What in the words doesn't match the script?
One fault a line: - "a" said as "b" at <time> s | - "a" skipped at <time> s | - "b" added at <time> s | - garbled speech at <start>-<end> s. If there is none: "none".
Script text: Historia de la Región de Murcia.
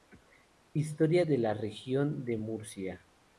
none